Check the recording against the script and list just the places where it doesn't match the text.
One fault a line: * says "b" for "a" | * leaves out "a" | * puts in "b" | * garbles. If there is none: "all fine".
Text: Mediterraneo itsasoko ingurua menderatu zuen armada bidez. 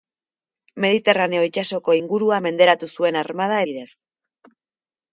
all fine